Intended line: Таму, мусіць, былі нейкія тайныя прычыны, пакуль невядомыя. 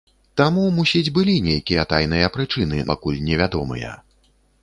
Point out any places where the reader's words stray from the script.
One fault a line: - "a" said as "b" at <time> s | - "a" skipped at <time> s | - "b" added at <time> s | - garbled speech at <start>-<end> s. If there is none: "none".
none